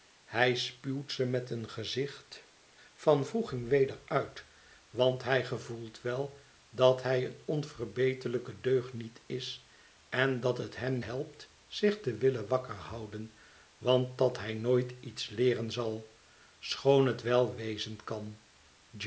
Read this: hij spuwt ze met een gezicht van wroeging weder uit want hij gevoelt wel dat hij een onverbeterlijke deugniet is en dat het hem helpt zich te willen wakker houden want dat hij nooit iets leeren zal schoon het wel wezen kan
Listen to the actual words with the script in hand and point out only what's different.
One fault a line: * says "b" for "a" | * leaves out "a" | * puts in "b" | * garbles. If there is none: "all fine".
all fine